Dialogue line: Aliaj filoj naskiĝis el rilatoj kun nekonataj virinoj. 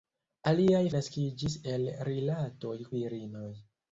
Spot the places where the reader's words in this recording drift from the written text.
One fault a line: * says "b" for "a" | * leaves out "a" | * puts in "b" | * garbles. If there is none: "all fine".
* leaves out "filoj"
* leaves out "kun nekonataj"